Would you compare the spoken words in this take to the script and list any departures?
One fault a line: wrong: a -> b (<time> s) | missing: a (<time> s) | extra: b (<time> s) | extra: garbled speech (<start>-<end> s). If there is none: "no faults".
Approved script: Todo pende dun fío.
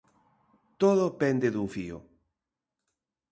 no faults